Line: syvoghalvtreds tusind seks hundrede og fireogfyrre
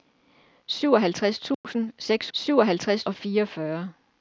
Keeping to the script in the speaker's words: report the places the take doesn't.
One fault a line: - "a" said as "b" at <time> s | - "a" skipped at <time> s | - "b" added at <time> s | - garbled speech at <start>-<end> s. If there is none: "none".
- "hundrede" said as "syvoghalvtreds" at 2.3 s